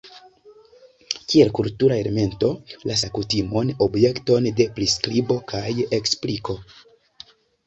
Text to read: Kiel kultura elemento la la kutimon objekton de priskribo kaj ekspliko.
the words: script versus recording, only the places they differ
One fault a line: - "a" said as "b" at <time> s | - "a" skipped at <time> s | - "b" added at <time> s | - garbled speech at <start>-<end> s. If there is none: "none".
none